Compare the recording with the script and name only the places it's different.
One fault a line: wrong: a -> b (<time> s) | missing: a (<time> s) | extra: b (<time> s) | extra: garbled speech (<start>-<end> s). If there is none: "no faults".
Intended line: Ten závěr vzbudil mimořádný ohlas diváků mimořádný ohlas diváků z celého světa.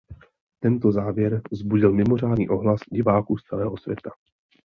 wrong: Ten -> Tento (0.6 s)
missing: mimořádný ohlas diváků (3.4 s)